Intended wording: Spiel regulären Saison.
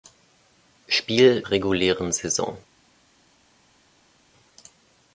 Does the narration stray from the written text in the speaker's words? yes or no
no